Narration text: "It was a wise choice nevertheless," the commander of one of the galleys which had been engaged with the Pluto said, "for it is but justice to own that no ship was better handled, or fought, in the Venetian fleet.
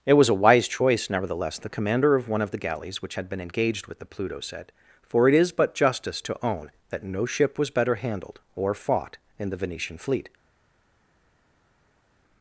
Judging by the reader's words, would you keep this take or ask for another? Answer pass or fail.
pass